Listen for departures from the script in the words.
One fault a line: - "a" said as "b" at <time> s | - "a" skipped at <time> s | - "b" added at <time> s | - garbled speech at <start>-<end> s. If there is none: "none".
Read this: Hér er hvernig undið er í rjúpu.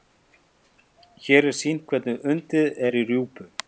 - "sýnt" added at 1.6 s